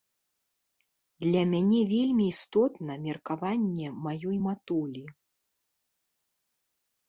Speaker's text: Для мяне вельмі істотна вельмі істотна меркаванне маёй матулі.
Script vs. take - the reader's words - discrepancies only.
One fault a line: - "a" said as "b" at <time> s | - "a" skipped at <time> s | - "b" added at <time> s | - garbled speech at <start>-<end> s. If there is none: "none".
- "вельмі істотна" skipped at 2.9 s